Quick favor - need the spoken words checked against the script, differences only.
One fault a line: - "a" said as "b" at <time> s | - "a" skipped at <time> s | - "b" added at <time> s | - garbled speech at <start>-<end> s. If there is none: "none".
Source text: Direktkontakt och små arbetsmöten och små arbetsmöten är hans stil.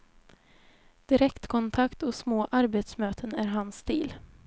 - "och små arbetsmöten" skipped at 3.4 s